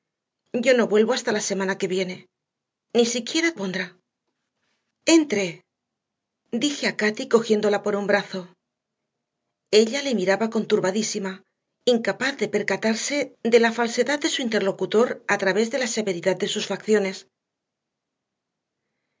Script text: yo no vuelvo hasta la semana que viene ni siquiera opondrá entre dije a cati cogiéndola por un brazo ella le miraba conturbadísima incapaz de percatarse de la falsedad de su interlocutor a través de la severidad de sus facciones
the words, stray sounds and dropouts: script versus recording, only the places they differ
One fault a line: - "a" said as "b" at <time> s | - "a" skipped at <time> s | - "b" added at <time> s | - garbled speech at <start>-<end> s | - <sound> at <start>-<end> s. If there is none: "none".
none